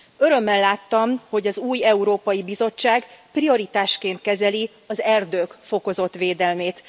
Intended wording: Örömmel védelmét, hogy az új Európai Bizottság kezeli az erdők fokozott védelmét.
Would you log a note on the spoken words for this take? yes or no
yes